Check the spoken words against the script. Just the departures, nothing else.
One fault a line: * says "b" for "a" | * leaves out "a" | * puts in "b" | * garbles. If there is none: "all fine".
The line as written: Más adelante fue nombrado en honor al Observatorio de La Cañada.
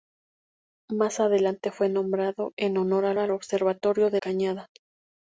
* puts in "al"
* leaves out "La"